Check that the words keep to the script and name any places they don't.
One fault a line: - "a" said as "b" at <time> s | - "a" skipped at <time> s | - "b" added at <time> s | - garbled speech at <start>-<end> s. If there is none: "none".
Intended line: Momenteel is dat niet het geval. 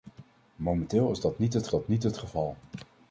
- "dat niet het" added at 1.7 s